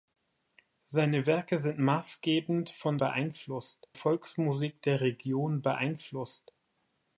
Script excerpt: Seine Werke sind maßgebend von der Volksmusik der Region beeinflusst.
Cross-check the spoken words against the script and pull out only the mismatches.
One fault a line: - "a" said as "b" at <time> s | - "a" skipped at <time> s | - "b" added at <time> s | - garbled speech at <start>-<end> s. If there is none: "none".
- "der" said as "beeinflusst" at 3.0 s